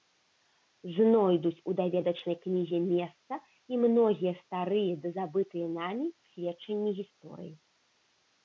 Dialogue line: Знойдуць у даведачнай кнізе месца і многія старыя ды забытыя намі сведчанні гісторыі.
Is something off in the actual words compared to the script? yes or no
no